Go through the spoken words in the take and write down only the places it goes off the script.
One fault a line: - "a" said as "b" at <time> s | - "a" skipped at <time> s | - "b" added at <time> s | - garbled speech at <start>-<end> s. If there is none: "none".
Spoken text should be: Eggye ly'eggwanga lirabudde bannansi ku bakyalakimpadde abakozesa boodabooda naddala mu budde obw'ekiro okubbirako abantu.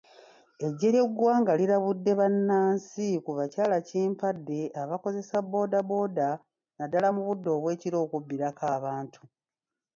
none